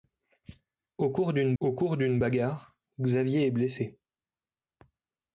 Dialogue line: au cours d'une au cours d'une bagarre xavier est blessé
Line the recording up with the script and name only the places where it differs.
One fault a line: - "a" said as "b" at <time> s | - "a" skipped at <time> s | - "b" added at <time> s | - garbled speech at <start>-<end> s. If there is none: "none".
none